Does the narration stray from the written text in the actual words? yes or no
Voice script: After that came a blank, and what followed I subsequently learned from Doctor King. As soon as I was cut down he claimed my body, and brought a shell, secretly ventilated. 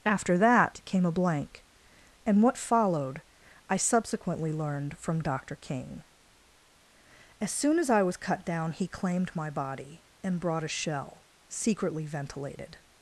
no